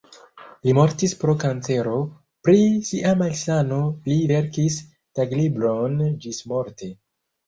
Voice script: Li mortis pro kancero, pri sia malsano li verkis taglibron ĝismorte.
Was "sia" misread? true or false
false